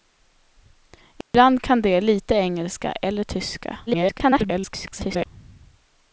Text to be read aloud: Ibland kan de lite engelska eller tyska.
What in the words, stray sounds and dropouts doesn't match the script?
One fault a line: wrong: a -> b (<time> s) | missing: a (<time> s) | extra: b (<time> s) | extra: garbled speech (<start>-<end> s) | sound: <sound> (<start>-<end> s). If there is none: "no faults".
sound: dropout (1.2-1.3 s)
extra: garbled speech (3.9-5.3 s)